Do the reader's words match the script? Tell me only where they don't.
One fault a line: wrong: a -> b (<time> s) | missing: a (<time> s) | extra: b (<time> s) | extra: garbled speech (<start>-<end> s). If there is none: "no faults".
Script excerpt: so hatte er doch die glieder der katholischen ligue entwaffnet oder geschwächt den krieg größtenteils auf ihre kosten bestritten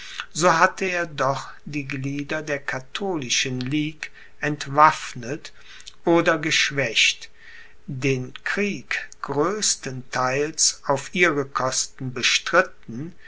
no faults